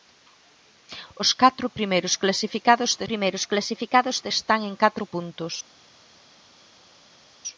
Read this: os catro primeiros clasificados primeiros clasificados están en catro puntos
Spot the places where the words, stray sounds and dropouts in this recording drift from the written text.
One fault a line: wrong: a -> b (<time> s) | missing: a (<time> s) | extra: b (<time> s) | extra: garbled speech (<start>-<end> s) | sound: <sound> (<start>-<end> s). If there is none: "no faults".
no faults